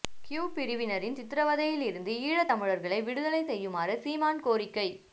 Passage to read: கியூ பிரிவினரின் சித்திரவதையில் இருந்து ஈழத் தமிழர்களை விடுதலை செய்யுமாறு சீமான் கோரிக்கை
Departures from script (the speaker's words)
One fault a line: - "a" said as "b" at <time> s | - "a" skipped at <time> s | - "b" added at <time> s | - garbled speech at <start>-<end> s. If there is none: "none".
none